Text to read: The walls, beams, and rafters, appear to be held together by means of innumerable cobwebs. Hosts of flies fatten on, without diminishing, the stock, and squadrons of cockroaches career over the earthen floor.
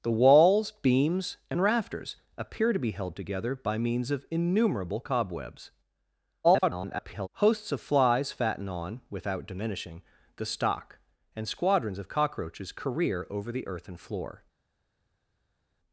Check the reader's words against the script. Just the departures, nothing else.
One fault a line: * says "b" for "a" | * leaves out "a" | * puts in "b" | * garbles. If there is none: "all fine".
* garbles